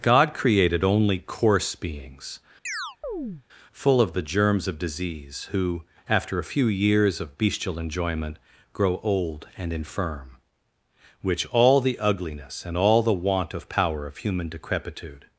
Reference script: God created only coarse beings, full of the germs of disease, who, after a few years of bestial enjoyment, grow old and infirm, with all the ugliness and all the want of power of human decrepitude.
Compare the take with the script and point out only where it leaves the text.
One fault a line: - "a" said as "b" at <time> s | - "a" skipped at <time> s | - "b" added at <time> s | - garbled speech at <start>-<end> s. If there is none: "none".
- "with" said as "which" at 11.2 s